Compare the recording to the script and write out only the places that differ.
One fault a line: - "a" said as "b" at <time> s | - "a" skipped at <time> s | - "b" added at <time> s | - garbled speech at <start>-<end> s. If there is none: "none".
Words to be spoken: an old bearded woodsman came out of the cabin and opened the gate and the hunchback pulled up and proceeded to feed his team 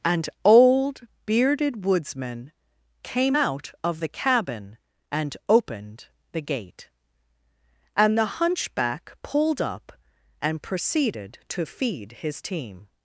none